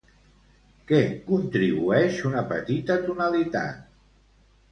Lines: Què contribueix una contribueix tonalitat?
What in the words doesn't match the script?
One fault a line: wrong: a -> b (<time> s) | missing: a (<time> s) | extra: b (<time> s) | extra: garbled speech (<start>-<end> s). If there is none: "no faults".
wrong: contribueix -> petita (2.5 s)